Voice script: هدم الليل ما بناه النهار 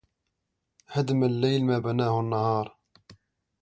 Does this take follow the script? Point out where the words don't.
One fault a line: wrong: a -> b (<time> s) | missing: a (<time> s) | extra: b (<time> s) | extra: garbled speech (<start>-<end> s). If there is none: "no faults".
no faults